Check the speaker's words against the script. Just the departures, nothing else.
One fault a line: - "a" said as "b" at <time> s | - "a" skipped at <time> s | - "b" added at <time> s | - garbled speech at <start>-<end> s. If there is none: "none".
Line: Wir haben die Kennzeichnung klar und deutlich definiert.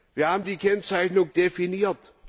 - "klar und deutlich" skipped at 1.3 s